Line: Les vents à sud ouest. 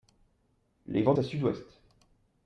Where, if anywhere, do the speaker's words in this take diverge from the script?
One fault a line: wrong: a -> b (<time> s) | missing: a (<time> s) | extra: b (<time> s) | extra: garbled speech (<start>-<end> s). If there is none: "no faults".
no faults